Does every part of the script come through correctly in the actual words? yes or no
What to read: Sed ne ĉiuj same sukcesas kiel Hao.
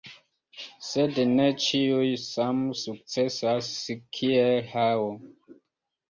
yes